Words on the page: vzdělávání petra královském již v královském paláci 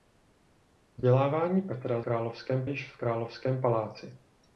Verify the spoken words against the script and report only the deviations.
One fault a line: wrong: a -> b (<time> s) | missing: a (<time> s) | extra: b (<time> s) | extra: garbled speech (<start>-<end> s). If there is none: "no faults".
no faults